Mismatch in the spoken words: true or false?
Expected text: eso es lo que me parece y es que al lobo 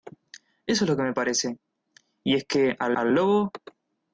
true